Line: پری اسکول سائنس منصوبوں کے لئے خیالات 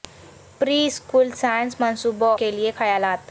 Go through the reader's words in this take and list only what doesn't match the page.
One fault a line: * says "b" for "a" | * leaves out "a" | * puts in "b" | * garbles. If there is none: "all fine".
all fine